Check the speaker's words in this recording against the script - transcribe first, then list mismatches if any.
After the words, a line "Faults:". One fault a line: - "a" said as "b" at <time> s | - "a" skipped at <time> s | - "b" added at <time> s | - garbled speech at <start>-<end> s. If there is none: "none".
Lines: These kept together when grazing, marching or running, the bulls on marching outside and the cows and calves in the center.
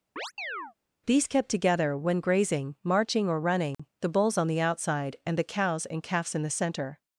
These kept together when grazing, marching or running, the bulls on the outside and the cows and calves in the center.
Faults:
- "marching" said as "the" at 4.5 s